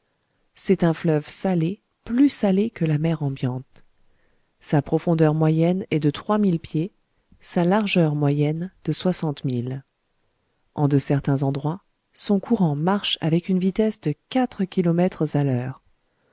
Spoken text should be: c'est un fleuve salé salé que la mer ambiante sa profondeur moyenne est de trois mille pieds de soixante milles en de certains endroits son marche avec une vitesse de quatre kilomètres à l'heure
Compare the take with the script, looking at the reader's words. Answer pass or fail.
fail